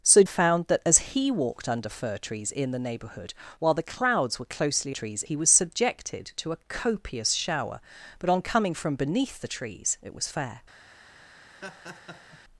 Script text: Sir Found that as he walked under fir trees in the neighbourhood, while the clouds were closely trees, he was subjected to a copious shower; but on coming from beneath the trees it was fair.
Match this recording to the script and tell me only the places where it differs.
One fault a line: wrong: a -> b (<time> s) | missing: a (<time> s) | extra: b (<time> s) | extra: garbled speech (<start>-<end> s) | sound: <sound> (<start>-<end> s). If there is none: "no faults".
sound: laugh (11.5-12.4 s)